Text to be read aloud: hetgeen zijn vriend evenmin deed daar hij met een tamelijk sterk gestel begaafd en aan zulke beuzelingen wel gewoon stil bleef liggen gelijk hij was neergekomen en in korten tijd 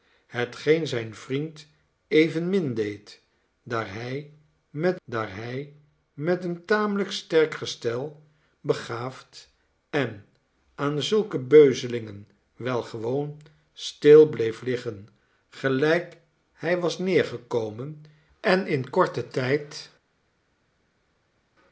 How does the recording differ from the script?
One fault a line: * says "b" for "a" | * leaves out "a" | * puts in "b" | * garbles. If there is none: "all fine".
* puts in "daar hij met"